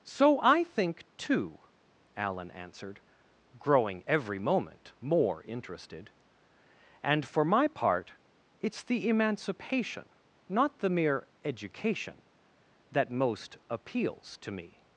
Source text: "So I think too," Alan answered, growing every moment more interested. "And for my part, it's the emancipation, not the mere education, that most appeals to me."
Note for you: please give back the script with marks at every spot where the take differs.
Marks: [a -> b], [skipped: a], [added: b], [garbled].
"So I think too," Alan answered, growing every moment more interested. "And for my part, it's the emancipation, not the mere education, that most appeals to me."